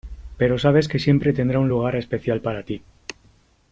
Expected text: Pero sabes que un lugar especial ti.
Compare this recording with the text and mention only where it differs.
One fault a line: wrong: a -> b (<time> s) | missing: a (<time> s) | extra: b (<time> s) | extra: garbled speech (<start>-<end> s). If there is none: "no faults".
extra: siempre tendrá (1.0 s)
extra: para (2.4 s)